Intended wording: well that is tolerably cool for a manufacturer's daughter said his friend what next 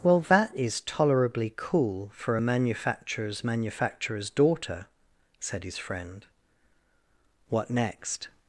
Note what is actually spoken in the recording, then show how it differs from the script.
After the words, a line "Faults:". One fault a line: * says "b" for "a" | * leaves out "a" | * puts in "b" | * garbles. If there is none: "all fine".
well that is tolerably cool for a manufacturer's manufacturer's daughter said his friend what next
Faults:
* puts in "manufacturer's"